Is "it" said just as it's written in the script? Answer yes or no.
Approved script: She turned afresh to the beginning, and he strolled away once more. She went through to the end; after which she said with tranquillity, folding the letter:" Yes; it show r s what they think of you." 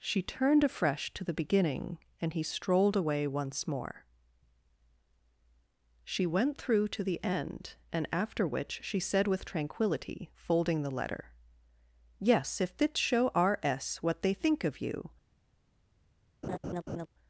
no